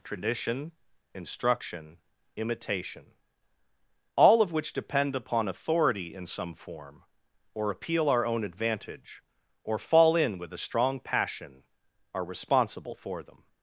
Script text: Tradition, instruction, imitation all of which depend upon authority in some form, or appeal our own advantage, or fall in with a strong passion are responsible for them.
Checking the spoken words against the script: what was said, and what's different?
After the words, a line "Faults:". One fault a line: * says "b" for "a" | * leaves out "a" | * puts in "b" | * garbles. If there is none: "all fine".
Tradition, instruction, imitation all of which depend upon authority in some form, or appeal our own advantage, or fall in with a strong passion are responsible for them.
Faults:
all fine